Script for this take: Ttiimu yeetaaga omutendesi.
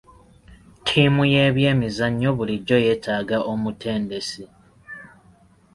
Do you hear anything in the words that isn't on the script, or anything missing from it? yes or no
yes